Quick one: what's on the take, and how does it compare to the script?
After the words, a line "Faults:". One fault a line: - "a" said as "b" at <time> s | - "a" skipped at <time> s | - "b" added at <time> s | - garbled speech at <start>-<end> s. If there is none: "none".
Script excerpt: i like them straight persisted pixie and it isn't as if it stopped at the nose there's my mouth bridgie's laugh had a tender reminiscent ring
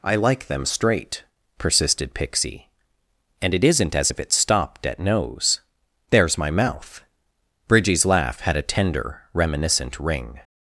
i like them straight persisted pixie and it isn't as if it stopped at nose there's my mouth bridgie's laugh had a tender reminiscent ring
Faults:
- "the" skipped at 5.0 s